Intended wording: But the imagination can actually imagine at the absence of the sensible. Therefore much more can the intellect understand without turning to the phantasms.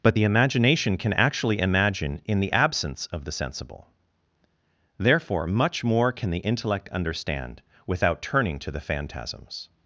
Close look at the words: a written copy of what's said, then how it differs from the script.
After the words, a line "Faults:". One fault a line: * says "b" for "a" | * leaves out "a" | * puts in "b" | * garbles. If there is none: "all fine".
But the imagination can actually imagine in the absence of the sensible. Therefore much more can the intellect understand without turning to the phantasms.
Faults:
* says "in" for "at"